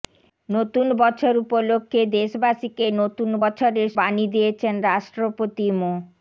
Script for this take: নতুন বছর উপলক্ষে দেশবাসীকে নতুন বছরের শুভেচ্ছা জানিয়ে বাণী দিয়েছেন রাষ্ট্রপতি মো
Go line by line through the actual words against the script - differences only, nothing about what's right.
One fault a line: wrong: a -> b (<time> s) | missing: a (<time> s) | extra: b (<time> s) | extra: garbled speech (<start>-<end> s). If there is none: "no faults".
missing: শুভেচ্ছা জানিয়ে (3.9 s)